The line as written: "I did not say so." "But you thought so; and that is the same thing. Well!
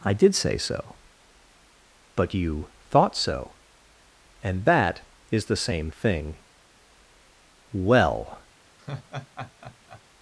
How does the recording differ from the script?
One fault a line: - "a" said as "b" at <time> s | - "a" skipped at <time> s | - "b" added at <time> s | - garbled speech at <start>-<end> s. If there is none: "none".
- "not" skipped at 0.3 s